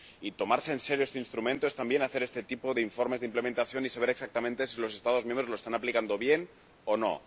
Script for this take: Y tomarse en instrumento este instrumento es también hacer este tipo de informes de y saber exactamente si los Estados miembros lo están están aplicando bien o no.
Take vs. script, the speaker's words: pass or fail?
fail